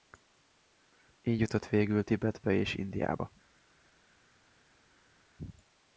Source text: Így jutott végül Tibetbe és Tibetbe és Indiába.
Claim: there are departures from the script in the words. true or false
true